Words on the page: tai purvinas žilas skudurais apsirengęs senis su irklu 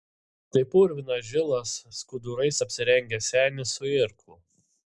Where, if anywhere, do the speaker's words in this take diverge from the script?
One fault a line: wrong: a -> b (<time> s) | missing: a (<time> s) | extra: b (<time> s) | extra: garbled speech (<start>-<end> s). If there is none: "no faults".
no faults